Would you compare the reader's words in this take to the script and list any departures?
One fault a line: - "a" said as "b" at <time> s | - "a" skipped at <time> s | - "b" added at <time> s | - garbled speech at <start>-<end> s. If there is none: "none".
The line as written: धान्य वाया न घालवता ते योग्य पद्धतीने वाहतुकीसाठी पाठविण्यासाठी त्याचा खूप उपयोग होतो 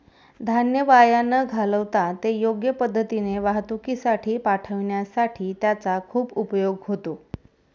none